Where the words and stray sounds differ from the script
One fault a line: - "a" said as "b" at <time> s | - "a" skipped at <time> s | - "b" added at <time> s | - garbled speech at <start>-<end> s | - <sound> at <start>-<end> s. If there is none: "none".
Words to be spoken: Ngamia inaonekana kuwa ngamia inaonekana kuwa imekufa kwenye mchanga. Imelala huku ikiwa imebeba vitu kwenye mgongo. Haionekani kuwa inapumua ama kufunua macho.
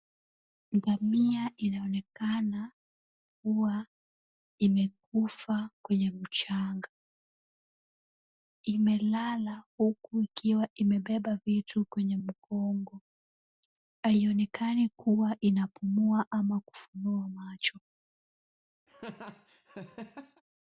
- "ngamia inaonekana kuwa" skipped at 3.9 s
- laugh at 18.9-20.4 s